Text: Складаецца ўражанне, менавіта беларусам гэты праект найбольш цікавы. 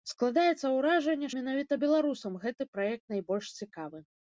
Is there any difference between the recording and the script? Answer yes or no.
no